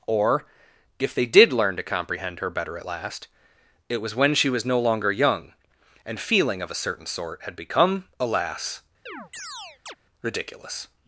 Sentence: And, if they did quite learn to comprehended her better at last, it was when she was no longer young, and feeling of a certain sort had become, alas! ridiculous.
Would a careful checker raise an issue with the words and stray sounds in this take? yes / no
yes